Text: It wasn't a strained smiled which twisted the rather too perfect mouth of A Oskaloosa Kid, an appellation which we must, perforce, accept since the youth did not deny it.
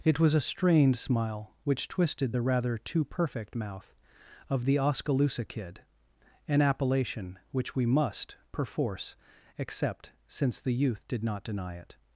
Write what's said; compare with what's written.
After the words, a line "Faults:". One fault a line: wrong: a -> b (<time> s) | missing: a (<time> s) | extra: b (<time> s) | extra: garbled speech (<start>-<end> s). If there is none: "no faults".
It was a strained smile which twisted the rather too perfect mouth of The Oskaloosa Kid, an appellation which we must, perforce, accept since the youth did not deny it.
Faults:
wrong: wasn't -> was (0.2 s)
wrong: smiled -> smile (1.0 s)
wrong: A -> The (4.6 s)